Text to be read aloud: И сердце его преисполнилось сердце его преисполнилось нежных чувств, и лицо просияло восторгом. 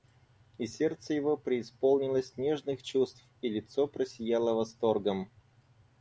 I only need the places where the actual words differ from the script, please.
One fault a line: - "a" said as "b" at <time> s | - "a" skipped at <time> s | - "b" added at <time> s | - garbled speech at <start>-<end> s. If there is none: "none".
- "сердце его преисполнилось" skipped at 2.4 s